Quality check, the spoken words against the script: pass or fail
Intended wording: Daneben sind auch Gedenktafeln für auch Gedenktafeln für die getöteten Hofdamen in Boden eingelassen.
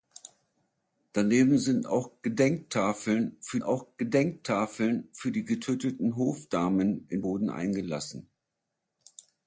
pass